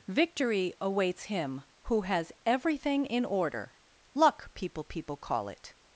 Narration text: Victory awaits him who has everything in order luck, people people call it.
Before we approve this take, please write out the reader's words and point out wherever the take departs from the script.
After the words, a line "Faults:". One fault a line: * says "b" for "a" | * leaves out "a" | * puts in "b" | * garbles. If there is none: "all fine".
Victory awaits him who has everything in order luck, people people call it.
Faults:
all fine